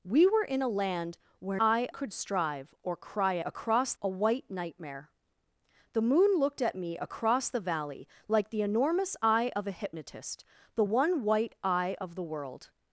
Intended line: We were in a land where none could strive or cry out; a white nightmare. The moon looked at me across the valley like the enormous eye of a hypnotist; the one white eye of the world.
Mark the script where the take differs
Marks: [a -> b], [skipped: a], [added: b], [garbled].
We were in a land where [none -> eye] could strive or cry [out; -> across] a white nightmare. The moon looked at me across the valley like the enormous eye of a hypnotist; the one white eye of the world.